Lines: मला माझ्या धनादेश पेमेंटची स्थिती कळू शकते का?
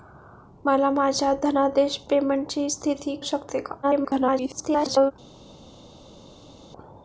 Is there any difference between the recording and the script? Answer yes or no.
yes